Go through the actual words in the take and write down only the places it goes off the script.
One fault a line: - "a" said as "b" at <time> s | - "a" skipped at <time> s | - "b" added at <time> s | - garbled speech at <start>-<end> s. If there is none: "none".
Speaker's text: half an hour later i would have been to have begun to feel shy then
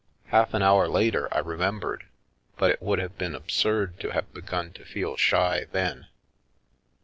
- "remembered but it" added at 1.4 s
- "absurd" added at 3.3 s